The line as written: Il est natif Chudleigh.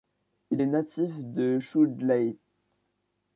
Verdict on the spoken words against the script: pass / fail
fail